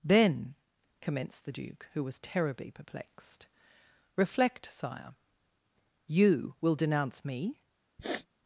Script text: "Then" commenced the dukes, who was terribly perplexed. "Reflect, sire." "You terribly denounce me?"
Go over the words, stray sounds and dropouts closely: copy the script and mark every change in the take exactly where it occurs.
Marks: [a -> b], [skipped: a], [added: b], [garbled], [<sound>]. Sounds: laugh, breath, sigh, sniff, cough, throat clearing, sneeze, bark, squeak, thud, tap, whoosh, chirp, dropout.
"Then" commenced the [dukes, -> duke] who was terribly perplexed. "Reflect, sire." "You [terribly -> will] denounce me?" [sniff]